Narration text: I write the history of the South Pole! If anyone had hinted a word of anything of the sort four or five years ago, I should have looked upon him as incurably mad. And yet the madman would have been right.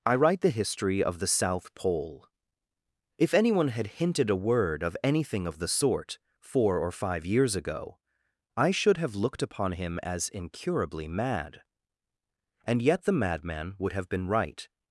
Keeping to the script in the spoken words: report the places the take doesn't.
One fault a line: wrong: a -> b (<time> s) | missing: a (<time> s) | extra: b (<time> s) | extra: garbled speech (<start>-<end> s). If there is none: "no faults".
no faults